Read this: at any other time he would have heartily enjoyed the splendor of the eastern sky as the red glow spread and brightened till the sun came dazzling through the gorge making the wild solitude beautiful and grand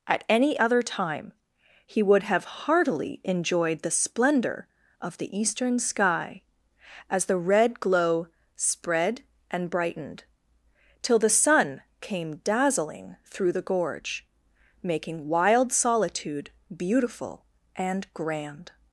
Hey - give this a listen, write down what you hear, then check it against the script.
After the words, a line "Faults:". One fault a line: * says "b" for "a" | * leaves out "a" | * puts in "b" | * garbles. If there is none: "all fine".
at any other time he would have heartily enjoyed the splendor of the eastern sky as the red glow spread and brightened till the sun came dazzling through the gorge making wild solitude beautiful and grand
Faults:
* leaves out "the"